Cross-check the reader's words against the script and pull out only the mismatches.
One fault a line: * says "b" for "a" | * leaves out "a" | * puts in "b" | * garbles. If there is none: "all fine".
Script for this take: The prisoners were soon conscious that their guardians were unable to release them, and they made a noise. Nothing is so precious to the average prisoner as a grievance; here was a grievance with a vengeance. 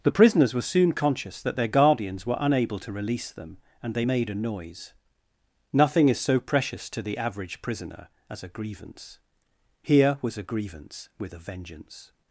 all fine